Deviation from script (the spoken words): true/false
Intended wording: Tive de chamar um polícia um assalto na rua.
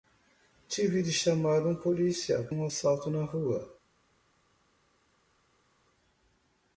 false